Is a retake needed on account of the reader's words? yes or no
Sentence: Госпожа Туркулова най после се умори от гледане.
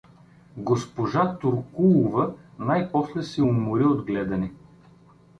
no